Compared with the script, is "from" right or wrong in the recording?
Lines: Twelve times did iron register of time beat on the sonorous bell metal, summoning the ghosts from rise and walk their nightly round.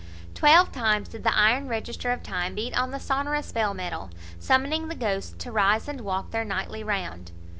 wrong